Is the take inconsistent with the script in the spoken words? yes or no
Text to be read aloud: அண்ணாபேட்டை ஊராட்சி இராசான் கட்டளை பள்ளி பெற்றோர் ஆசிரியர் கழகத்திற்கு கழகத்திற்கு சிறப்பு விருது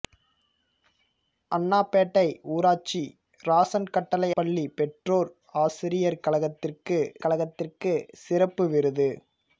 no